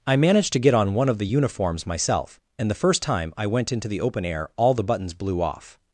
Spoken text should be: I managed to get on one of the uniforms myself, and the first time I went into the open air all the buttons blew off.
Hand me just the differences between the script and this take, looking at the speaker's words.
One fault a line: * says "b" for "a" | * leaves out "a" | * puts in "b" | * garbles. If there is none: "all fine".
all fine